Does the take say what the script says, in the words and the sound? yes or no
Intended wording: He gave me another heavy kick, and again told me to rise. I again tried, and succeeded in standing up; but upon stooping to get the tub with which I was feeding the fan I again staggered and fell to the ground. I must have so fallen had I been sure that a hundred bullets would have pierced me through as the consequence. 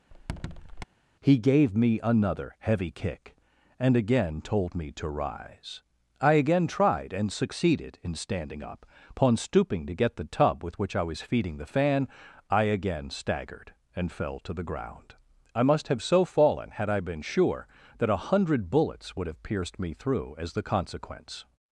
no